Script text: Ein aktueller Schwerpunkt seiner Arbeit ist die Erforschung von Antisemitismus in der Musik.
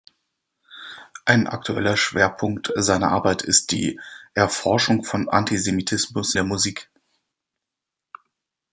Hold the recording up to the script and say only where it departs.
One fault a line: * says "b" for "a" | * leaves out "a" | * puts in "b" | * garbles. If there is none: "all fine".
* leaves out "in"